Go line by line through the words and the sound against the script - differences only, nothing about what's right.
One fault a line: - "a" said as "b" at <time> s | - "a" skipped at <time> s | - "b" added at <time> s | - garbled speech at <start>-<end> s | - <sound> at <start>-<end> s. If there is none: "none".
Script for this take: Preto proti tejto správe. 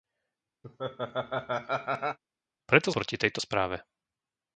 - laugh at 0.6-2.2 s